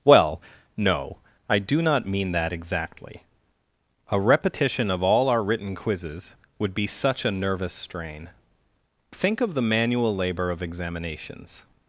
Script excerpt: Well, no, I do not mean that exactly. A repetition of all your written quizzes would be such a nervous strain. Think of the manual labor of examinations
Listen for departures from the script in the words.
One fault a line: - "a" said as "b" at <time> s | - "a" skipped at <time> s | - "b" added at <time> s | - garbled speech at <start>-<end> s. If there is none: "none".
- "your" said as "our" at 5.3 s